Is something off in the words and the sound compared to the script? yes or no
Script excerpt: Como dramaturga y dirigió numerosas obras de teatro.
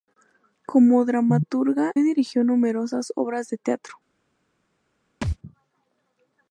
yes